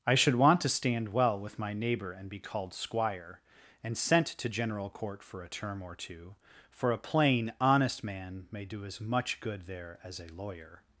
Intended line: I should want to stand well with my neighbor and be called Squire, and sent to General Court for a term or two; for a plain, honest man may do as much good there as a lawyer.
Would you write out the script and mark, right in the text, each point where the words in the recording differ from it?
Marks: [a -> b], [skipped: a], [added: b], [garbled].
I should want to stand well with my neighbor and be called Squire, and sent to General Court for a term or two; for a plain, honest man may do as much good there as a lawyer.